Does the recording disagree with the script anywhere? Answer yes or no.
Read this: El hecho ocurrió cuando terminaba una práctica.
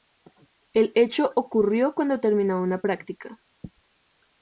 no